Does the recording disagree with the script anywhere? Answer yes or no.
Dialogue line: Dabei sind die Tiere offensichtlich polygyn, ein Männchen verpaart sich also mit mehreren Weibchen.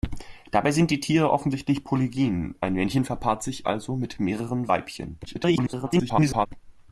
yes